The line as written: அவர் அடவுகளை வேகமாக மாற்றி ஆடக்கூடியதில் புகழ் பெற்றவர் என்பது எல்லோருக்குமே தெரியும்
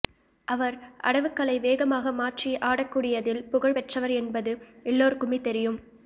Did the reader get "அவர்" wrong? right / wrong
right